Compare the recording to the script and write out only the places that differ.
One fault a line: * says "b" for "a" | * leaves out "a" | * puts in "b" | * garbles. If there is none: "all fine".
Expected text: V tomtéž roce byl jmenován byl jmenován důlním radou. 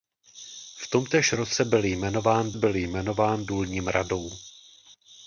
all fine